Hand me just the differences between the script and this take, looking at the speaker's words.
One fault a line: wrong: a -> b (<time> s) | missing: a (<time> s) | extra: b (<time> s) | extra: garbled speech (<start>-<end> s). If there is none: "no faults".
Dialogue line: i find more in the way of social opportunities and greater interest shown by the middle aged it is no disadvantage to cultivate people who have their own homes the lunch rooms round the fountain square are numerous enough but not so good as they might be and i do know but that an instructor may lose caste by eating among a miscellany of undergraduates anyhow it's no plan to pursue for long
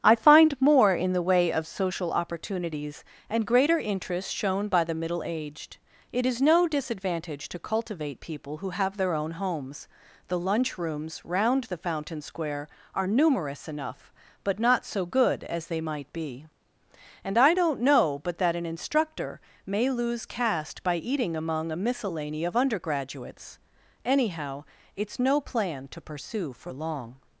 wrong: do -> don't (17.5 s)